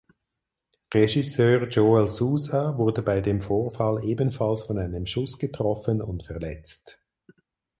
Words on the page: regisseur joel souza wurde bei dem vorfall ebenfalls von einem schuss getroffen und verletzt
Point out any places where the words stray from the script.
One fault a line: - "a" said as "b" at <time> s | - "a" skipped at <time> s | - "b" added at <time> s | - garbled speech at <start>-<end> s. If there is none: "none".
none